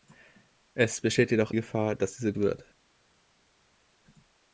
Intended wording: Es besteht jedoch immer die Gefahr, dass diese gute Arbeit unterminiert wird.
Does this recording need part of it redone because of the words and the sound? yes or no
yes